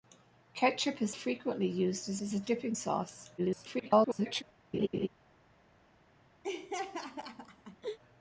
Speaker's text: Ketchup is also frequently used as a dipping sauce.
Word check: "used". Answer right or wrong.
right